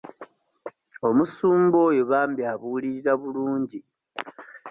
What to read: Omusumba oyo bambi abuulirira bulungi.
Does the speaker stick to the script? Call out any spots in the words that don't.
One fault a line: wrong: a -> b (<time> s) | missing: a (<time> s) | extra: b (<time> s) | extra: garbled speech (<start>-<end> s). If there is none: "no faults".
no faults